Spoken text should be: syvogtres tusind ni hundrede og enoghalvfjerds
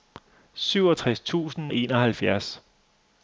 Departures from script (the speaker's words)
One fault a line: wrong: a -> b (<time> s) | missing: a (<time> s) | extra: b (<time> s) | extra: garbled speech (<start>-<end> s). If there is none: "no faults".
missing: ni hundrede (1.7 s)